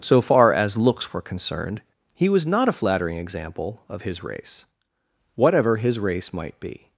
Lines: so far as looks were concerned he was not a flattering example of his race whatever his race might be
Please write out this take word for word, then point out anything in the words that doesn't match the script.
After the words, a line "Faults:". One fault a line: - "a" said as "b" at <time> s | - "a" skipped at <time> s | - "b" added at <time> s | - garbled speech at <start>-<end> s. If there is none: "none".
so far as looks were concerned he was not a flattering example of his race whatever his race might be
Faults:
none